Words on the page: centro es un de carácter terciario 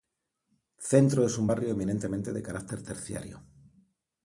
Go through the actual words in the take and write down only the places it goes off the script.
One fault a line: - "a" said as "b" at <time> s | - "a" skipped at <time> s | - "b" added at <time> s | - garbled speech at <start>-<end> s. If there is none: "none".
- "barrio eminentemente" added at 1.4 s